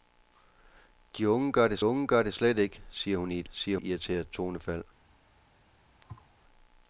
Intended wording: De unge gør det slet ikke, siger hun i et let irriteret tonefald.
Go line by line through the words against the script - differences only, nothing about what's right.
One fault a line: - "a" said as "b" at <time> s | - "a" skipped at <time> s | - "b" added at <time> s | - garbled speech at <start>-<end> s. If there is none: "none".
- "unge gør det" added at 1.8 s
- "let" said as "siger" at 3.5 s